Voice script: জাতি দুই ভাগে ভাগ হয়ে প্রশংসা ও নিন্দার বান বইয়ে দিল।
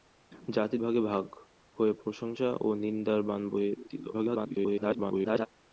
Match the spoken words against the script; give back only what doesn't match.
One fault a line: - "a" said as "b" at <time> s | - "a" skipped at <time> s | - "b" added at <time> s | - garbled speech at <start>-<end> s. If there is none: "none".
- "দুই" skipped at 0.8 s
- garbled speech at 4.1-5.5 s